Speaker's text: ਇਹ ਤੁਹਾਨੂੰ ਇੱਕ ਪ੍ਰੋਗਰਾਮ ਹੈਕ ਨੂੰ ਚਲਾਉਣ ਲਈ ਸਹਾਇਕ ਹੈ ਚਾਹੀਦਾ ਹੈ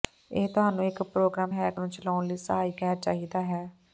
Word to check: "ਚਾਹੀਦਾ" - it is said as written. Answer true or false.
true